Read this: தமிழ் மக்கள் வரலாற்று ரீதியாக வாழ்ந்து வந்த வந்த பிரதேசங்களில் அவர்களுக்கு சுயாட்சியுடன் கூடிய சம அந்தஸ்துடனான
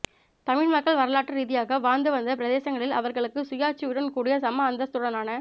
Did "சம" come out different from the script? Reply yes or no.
no